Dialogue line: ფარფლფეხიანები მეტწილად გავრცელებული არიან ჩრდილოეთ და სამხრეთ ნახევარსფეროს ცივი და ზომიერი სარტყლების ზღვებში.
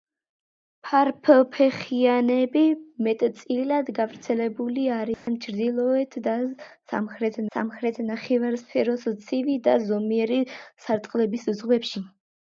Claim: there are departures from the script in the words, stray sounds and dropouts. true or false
true